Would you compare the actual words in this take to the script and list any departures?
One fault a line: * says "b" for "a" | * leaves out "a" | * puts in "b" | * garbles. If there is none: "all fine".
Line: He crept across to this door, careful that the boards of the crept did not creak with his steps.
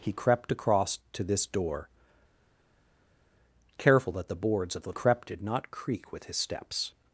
all fine